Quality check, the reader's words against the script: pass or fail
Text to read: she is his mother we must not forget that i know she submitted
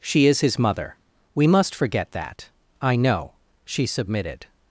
fail